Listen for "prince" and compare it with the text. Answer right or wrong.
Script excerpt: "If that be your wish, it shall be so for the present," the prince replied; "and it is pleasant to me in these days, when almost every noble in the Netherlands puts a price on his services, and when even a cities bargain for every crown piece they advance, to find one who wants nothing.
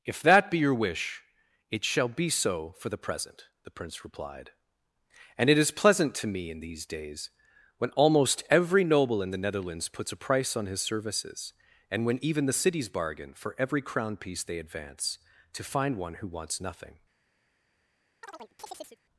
right